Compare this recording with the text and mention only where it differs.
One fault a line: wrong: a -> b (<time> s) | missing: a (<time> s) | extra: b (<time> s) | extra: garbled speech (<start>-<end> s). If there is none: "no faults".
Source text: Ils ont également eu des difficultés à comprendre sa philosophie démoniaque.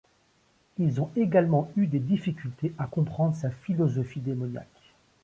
no faults